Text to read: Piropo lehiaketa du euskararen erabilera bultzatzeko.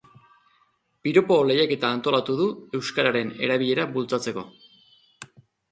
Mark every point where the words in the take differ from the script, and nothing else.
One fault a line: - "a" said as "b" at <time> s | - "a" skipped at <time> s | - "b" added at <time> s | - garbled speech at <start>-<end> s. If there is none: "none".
- "antolatu" added at 2.0 s